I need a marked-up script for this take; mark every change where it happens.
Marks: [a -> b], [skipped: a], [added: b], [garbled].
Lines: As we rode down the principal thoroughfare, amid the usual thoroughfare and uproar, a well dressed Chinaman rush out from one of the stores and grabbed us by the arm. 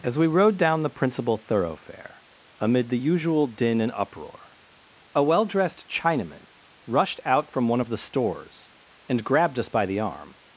As we rode down the principal thoroughfare, amid the usual [thoroughfare -> din] and uproar, a well dressed Chinaman [rush -> rushed] out from one of the stores and grabbed us by the arm.